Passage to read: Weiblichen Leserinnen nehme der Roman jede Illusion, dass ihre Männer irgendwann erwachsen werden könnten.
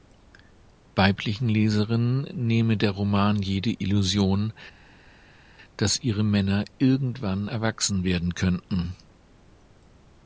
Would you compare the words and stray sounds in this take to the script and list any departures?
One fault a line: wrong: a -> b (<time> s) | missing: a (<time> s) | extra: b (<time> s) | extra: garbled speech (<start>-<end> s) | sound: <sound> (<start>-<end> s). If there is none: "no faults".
no faults